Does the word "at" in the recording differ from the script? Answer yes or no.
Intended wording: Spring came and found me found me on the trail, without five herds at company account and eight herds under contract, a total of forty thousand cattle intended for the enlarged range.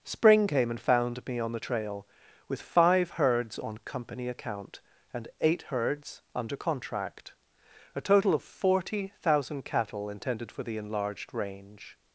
yes